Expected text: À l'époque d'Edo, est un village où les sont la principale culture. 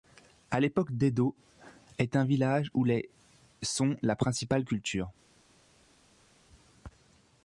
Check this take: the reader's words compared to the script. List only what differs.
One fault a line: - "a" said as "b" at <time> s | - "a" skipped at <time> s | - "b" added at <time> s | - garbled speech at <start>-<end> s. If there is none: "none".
none